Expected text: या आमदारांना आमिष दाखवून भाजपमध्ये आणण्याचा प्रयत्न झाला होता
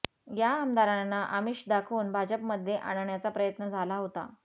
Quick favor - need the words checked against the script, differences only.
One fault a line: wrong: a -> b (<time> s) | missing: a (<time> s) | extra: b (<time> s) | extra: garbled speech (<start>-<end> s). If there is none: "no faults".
no faults